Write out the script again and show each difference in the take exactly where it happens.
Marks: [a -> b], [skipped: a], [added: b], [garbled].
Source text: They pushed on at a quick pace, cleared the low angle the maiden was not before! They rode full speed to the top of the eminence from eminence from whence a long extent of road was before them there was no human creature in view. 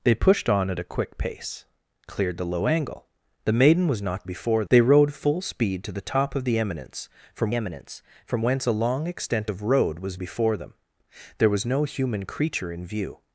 They pushed on at a quick pace, cleared the low angle the maiden was not before! They rode full speed to the top of the eminence from eminence from whence a long extent of road was before them there was no human creature in view.